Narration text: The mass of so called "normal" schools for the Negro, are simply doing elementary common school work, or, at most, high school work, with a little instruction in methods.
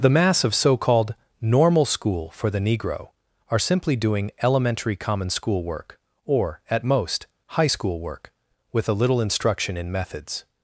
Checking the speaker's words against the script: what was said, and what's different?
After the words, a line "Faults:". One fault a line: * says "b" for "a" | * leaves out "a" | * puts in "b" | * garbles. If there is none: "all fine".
The mass of so called "normal" school for the Negro, are simply doing elementary common school work, or, at most, high school work, with a little instruction in methods.
Faults:
* says "school" for "schools"